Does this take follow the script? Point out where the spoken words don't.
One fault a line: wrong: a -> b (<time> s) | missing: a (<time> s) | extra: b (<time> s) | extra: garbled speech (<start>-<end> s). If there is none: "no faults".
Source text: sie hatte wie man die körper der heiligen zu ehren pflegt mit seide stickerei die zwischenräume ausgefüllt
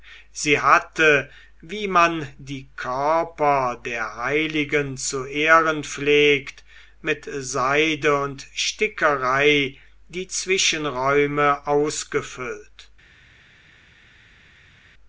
extra: und (8.2 s)